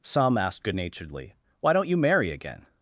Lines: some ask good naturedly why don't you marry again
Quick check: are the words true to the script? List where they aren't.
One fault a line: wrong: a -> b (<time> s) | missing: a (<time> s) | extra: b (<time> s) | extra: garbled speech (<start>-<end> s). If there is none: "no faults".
wrong: ask -> asked (0.3 s)